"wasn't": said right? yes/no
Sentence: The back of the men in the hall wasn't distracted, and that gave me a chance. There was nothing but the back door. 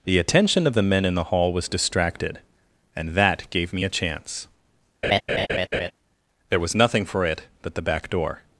no